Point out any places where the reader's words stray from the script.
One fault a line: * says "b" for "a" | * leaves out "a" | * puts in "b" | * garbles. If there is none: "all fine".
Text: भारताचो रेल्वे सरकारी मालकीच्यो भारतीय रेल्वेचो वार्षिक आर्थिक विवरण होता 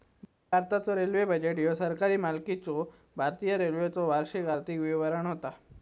* puts in "बजेट ह्यो"